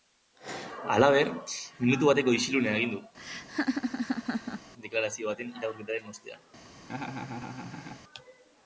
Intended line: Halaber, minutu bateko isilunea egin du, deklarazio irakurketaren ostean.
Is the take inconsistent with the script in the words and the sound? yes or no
yes